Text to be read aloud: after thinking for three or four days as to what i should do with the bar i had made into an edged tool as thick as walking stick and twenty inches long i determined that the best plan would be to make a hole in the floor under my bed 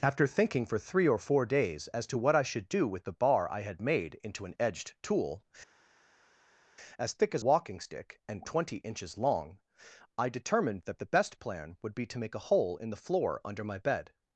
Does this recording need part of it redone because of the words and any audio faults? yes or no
no